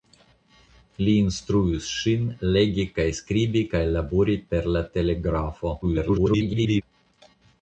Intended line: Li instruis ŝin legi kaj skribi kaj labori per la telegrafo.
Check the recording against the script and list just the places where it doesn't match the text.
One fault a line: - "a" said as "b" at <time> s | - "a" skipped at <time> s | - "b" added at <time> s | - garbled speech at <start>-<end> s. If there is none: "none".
- garbled speech at 5.8-6.8 s